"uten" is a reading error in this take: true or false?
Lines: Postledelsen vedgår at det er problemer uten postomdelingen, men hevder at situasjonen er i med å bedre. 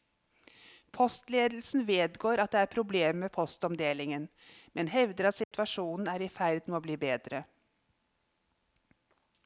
true